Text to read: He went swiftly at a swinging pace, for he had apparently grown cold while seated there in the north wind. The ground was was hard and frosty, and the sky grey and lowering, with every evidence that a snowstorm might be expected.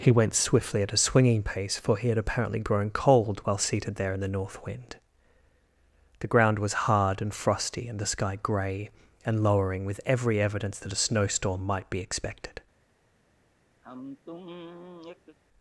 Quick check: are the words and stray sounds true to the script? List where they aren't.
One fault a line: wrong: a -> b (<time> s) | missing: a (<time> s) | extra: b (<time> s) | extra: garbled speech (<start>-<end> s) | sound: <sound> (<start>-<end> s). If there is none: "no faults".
missing: was (6.9 s)
sound: sigh (13.8-15.4 s)